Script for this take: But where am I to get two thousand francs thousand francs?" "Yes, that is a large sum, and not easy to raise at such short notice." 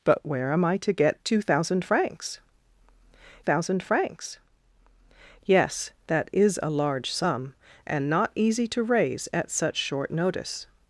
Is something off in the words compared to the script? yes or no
no